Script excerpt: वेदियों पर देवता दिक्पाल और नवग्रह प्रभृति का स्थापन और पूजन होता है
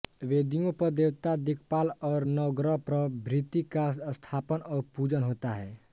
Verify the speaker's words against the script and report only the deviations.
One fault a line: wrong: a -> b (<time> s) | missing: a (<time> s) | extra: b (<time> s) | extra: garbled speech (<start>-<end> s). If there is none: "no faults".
no faults